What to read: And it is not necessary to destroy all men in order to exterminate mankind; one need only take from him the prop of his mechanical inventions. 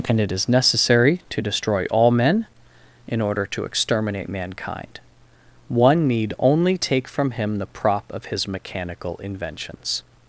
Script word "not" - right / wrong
wrong